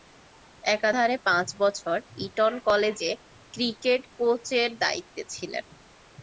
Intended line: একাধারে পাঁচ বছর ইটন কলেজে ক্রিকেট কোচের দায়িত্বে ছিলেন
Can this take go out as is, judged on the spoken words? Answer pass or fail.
pass